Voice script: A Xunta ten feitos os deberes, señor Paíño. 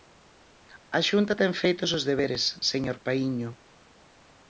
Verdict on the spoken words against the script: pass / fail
pass